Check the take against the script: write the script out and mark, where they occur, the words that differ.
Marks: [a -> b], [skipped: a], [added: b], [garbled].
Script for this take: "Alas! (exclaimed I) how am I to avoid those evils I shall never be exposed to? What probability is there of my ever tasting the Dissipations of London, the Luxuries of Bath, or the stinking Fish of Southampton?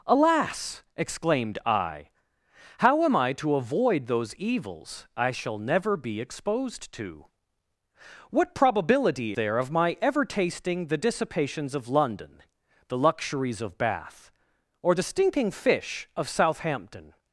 "Alas! (exclaimed I) how am I to avoid those evils I shall never be exposed to? What probability [skipped: is] there of my ever tasting the Dissipations of London, the Luxuries of Bath, or the stinking Fish of Southampton?